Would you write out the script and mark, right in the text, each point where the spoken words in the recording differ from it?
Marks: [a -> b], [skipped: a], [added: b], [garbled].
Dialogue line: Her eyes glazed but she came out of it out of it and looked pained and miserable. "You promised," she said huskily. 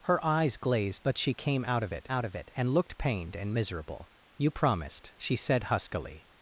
Her eyes glazed but she came out of it out of it and looked pained and miserable. "You promised," she said huskily.